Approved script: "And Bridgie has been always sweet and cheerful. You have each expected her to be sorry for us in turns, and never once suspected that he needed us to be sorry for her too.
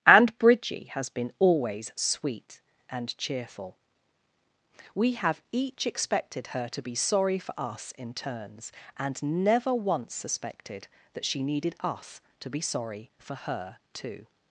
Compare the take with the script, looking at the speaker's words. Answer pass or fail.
fail